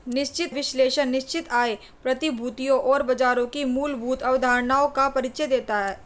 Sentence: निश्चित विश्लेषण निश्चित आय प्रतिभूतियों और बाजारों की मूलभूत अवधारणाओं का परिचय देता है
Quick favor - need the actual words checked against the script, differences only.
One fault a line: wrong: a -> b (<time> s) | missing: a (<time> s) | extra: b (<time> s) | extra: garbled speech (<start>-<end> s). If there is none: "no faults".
no faults